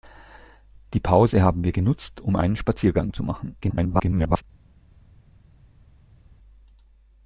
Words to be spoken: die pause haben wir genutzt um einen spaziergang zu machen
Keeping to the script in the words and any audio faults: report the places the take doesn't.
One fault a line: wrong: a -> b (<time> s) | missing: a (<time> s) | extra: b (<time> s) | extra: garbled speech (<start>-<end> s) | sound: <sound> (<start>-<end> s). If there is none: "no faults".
extra: garbled speech (3.6-4.4 s)